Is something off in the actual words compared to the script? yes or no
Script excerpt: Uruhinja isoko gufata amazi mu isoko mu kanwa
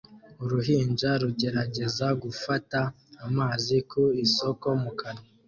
yes